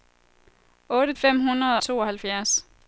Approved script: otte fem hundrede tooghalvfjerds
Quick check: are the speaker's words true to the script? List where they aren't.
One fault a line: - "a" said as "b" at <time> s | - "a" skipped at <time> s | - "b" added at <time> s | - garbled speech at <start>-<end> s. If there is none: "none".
none